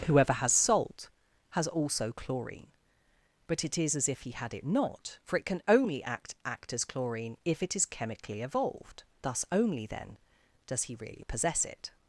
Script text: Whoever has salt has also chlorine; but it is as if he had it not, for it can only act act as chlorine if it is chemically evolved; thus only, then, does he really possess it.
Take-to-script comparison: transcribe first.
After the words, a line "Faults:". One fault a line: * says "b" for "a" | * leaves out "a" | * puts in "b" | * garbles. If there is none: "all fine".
Whoever has salt has also chlorine; but it is as if he had it not, for it can only act act as chlorine if it is chemically evolved; thus only, then, does he really possess it.
Faults:
all fine